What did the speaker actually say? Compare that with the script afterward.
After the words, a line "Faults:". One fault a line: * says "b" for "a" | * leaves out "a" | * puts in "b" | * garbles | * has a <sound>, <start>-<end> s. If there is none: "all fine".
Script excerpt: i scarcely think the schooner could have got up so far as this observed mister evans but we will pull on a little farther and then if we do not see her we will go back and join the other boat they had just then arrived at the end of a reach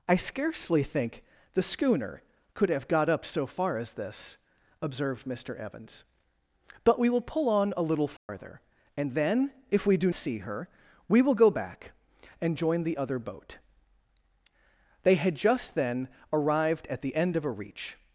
i scarcely think the schooner could have got up so far as this observed mister evans but we will pull on a little farther and then if we do see her we will go back and join the other boat they had just then arrived at the end of a reach
Faults:
* has a dropout, 8.2-8.3 s
* leaves out "not"